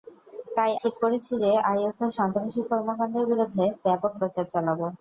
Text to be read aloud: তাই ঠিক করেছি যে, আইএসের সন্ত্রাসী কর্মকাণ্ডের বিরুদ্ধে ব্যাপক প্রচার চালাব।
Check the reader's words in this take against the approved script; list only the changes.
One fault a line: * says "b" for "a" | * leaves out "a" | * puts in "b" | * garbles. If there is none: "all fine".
all fine